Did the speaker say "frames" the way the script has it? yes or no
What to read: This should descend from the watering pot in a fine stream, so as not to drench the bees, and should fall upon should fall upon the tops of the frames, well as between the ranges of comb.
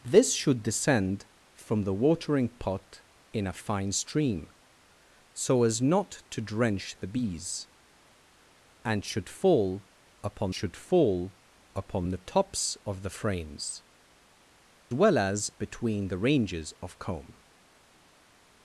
yes